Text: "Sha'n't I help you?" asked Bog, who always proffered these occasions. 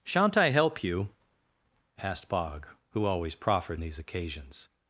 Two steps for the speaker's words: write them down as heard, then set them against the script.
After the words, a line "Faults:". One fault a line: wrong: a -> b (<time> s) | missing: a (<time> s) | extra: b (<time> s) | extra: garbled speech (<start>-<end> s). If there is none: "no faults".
"Sha'n't I help you?" asked Bog, who always proffered these occasions.
Faults:
no faults